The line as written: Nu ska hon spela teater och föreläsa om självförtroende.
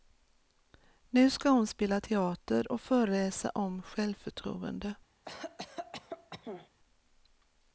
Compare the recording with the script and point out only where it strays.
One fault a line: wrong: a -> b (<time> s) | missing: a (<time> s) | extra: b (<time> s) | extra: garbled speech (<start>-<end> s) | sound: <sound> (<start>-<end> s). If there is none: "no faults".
sound: cough (5.2-6.7 s)